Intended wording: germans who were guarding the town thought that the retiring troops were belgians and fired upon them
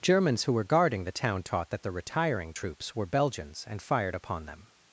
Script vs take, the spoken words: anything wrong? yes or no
yes